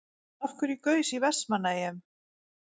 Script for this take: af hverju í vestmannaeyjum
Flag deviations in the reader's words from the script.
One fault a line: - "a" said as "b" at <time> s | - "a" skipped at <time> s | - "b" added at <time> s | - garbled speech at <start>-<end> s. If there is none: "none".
- "gaus" added at 0.9 s